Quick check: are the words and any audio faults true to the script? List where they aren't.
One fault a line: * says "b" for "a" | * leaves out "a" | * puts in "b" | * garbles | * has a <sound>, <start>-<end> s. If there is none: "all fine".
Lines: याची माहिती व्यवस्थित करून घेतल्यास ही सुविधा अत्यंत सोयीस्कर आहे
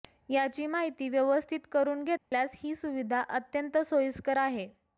* has a dropout, 2.2-2.3 s